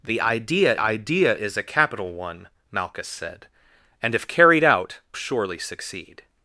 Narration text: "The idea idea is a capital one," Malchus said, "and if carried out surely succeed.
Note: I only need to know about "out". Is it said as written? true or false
true